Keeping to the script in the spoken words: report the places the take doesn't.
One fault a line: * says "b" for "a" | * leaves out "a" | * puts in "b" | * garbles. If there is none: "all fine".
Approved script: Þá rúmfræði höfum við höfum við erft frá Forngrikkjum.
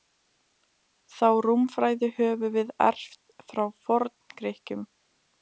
* leaves out "höfum við"